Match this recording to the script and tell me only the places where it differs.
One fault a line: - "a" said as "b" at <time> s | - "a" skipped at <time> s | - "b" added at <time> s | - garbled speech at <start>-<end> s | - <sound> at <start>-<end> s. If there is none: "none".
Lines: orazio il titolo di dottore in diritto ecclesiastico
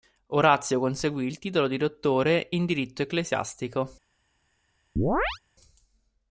- "conseguì" added at 0.8 s
- chirp at 5.0-5.4 s